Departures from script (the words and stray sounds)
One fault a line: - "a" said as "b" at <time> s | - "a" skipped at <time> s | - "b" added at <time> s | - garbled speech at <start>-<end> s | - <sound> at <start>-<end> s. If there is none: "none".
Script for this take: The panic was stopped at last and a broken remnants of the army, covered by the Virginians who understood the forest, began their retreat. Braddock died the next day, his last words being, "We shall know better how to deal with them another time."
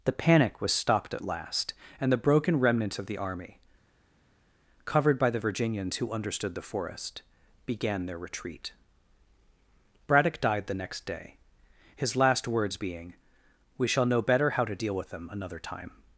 - "a" said as "the" at 2.1 s